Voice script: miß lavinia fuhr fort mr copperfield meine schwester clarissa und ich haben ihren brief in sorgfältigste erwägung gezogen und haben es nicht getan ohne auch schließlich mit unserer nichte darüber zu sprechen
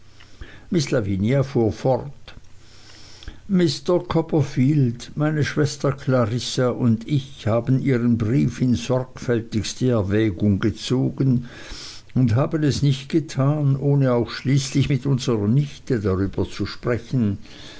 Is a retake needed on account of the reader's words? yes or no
no